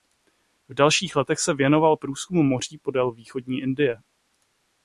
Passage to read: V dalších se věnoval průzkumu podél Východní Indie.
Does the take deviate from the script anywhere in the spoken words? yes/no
yes